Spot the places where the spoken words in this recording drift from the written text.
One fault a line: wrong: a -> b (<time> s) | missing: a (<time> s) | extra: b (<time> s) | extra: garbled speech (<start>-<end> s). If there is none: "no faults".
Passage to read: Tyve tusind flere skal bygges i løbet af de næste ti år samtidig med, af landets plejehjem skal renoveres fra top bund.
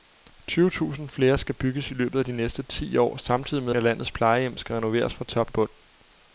no faults